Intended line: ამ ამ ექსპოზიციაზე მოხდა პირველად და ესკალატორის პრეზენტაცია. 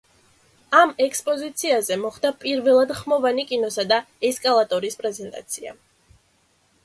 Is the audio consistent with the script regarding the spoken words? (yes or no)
no